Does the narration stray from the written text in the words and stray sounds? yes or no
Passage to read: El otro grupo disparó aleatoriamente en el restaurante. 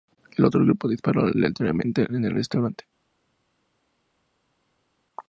no